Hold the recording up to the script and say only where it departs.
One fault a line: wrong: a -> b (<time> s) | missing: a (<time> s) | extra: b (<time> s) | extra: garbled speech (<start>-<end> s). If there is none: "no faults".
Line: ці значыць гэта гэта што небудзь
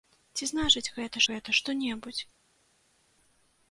no faults